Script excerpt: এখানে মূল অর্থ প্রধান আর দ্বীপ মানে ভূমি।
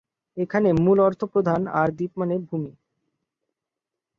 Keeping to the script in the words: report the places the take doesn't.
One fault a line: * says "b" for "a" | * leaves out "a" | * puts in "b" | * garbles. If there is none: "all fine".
all fine